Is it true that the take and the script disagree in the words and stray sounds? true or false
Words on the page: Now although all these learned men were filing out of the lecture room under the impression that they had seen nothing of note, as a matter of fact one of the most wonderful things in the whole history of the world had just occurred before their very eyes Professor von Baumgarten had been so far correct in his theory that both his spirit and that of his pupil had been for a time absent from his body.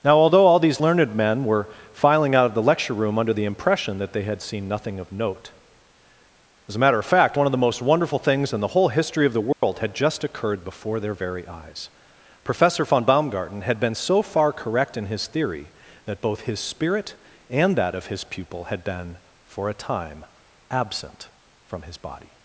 true